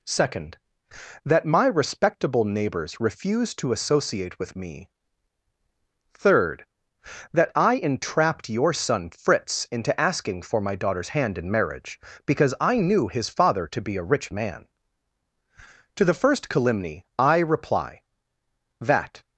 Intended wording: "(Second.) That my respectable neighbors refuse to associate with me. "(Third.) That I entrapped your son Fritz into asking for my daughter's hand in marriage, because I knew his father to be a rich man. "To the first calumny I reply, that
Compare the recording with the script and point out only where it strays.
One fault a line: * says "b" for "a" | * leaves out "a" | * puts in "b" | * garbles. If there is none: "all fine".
all fine